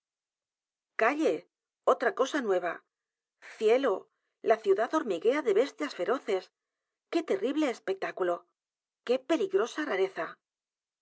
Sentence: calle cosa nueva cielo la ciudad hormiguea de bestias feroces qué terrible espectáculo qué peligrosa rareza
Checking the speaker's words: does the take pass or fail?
fail